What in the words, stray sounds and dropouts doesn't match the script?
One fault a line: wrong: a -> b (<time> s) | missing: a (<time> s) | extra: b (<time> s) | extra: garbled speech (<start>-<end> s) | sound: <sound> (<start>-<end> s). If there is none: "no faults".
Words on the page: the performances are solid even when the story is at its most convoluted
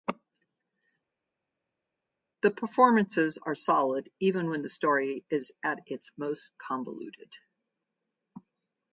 no faults